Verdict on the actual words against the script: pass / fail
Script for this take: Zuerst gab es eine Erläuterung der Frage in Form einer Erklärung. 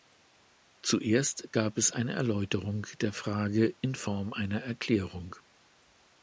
pass